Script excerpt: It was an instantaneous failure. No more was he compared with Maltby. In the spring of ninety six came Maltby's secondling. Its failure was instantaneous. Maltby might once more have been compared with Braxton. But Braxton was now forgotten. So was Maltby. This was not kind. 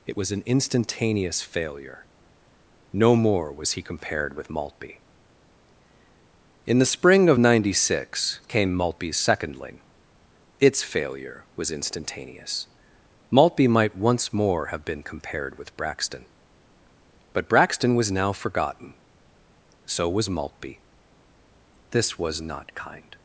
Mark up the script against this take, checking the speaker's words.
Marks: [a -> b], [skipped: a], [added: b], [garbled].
It was an instantaneous failure. No more was he compared with Maltby. In the spring of ninety six came Maltby's secondling. Its failure was instantaneous. Maltby might once more have been compared with Braxton. But Braxton was now forgotten. So was Maltby. This was not kind.